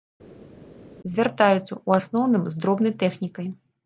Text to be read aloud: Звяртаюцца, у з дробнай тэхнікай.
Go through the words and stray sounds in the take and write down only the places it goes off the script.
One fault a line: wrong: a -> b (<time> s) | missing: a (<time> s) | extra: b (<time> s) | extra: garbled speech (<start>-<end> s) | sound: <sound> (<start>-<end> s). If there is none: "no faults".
extra: асноўным (2.0 s)